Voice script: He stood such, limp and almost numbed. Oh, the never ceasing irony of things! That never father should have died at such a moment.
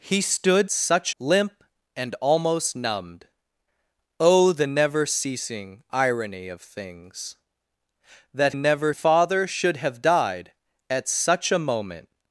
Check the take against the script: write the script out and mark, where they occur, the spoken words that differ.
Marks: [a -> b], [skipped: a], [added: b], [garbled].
He stood such, limp and almost numbed. Oh, the never ceasing irony of things! That never father should have died at such a moment.